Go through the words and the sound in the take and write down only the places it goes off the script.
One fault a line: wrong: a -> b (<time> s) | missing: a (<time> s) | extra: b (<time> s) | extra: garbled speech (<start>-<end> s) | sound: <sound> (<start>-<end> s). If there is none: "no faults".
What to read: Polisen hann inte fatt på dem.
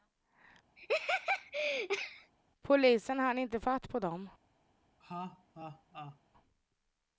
sound: laugh (0.8-2.3 s)
sound: laugh (5.0-6.2 s)